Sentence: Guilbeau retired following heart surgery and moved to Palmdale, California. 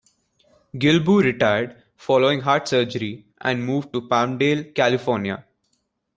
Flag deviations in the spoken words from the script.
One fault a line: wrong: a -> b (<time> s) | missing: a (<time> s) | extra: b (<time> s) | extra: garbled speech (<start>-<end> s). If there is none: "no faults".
no faults